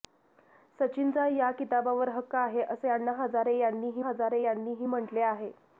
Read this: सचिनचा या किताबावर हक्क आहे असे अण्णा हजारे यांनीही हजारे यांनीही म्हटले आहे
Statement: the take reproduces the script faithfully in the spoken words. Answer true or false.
true